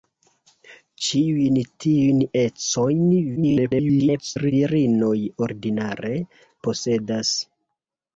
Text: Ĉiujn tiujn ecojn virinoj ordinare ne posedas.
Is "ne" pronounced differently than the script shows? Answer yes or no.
yes